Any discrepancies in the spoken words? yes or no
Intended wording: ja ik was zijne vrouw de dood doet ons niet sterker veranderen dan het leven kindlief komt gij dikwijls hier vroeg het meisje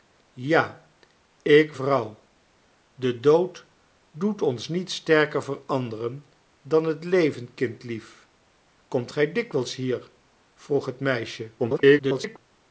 yes